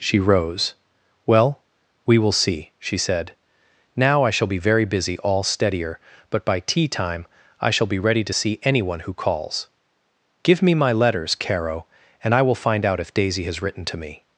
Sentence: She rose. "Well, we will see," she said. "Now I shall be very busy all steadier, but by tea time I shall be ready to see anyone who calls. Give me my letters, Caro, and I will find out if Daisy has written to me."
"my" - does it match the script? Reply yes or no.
yes